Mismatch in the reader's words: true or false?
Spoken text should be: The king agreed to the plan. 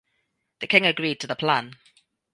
false